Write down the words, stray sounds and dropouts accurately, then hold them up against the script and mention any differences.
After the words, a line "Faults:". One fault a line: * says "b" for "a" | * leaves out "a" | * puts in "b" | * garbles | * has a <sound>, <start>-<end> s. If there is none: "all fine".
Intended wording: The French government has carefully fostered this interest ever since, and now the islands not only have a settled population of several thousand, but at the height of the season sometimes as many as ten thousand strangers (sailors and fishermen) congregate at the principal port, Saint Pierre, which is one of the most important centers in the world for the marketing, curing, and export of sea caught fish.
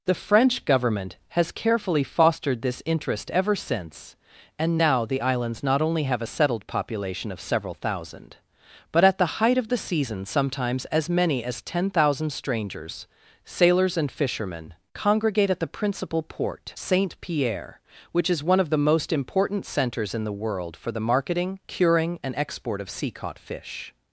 The French government has carefully fostered this interest ever since, and now the islands not only have a settled population of several thousand, but at the height of the season sometimes as many as ten thousand strangers (sailors and fishermen) congregate at the principal port, Saint Pierre, which is one of the most important centers in the world for the marketing, curing, and export of sea caught fish.
Faults:
all fine